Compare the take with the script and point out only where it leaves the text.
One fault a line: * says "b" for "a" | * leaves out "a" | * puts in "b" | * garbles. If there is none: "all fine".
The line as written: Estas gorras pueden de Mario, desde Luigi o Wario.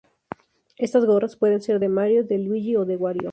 * puts in "ser"
* says "de" for "desde"
* puts in "de"